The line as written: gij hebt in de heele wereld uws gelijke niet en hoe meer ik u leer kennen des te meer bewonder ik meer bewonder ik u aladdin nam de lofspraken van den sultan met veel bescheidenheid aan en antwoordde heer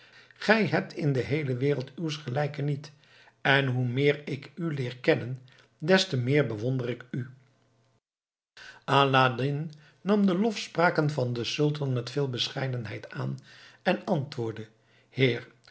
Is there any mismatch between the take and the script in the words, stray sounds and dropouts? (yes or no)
yes